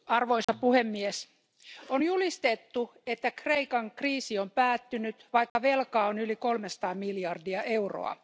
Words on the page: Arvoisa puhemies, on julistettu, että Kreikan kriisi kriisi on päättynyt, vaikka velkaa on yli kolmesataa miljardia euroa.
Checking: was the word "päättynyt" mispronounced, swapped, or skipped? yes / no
no